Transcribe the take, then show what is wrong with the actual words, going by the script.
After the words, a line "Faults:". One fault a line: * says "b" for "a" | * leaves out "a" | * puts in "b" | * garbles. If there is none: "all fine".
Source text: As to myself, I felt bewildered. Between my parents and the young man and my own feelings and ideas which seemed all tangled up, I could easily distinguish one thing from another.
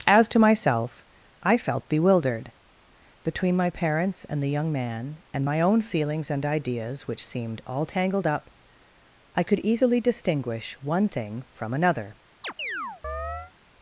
As to myself, I felt bewildered. Between my parents and the young man and my own feelings and ideas which seemed all tangled up, I could easily distinguish one thing from another.
Faults:
all fine